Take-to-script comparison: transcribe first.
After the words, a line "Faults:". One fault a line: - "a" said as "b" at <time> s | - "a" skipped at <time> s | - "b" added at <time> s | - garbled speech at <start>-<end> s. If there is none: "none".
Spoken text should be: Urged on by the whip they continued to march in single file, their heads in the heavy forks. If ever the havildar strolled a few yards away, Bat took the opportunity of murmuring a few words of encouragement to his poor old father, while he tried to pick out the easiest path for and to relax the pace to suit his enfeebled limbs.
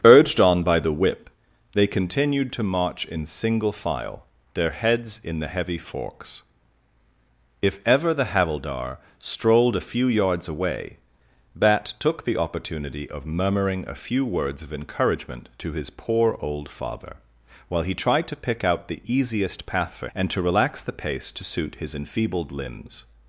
Urged on by the whip they continued to march in single file, their heads in the heavy forks. If ever the havildar strolled a few yards away, Bat took the opportunity of murmuring a few words of encouragement to his poor old father, while he tried to pick out the easiest path for and to relax the pace to suit his enfeebled limbs.
Faults:
none